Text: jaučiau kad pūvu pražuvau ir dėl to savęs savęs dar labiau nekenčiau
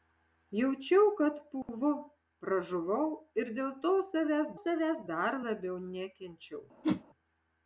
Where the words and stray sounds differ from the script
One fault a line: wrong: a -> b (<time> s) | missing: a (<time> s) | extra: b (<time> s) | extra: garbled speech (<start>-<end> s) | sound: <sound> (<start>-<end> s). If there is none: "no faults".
sound: dropout (1.6-1.7 s)
sound: whoosh (6.8-7.0 s)